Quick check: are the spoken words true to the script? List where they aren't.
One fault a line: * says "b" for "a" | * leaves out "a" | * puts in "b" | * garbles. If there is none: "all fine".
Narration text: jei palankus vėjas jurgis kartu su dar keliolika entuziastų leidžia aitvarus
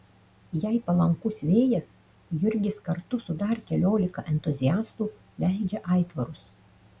all fine